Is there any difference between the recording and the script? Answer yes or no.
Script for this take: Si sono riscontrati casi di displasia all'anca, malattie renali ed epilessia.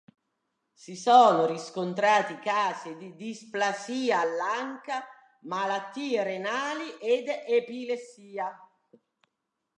no